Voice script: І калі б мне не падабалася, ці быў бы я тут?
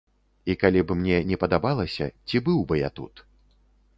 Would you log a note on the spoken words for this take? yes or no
no